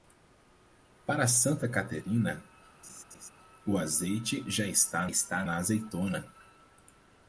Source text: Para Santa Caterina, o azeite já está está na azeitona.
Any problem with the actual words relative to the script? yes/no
no